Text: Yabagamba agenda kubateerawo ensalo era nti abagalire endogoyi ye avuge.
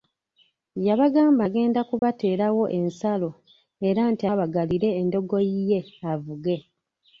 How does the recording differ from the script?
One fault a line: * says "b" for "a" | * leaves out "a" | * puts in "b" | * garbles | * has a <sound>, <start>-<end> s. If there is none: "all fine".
* has a dropout, 2.0-2.0 s